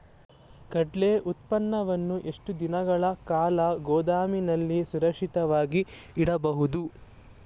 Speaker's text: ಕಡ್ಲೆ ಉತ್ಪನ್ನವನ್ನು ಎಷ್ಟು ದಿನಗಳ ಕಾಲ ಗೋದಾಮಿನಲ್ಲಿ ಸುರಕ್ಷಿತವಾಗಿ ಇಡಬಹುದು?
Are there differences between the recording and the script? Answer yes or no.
no